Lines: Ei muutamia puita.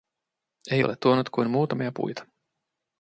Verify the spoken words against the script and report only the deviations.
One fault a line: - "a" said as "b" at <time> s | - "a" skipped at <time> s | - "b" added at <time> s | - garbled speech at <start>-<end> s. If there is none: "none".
- "ole tuonut kuin" added at 0.8 s